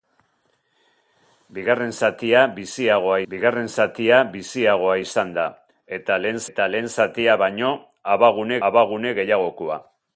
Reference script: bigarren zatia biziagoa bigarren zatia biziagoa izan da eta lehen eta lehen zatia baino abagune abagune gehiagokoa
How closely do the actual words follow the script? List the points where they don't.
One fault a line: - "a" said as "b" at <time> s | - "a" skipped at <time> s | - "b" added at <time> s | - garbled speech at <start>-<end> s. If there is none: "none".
none